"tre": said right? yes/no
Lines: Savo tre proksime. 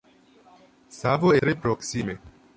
yes